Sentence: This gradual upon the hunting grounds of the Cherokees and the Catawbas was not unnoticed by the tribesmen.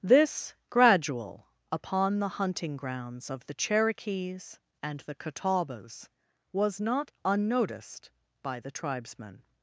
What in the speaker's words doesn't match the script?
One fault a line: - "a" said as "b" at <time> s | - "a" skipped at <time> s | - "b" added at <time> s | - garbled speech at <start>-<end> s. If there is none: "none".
none